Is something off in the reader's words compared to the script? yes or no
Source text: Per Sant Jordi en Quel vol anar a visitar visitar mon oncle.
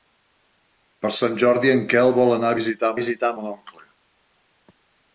no